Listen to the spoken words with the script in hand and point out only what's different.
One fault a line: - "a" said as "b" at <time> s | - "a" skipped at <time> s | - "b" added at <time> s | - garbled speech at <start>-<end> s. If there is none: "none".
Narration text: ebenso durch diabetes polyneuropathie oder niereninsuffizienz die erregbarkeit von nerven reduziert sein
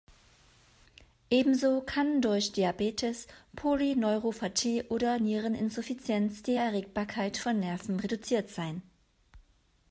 - "kann" added at 1.8 s